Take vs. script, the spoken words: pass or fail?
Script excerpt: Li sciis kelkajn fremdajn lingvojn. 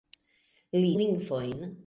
fail